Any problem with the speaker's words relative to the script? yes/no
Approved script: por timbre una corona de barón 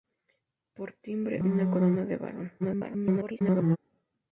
yes